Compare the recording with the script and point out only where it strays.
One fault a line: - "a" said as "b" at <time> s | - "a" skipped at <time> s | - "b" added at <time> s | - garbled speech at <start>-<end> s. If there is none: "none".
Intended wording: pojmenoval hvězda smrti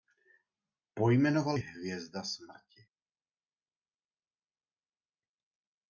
none